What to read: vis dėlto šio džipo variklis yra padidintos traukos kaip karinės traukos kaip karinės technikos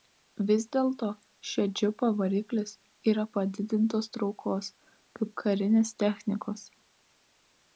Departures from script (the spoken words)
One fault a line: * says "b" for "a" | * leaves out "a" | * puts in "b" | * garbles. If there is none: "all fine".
* leaves out "traukos kaip karinės"